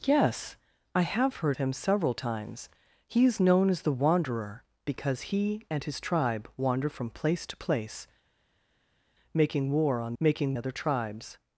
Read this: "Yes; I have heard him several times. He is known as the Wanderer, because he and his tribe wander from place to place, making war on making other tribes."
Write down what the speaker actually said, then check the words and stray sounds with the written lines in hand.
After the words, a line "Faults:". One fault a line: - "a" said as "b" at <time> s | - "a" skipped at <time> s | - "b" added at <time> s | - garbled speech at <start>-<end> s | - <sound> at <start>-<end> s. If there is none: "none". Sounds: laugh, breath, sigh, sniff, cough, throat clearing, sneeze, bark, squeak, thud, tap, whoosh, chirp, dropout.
"Yes; I have heard him several times. He is known as the Wanderer, because he and his tribe wander from place to place, making war on making other tribes."
Faults:
none